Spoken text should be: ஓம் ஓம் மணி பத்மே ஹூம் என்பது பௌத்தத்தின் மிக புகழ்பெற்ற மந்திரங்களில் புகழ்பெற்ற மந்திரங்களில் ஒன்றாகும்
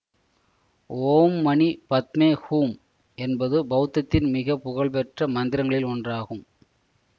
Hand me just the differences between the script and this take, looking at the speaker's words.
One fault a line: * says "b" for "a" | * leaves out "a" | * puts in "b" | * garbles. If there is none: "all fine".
* leaves out "ஓம்"
* leaves out "புகழ்பெற்ற மந்திரங்களில்"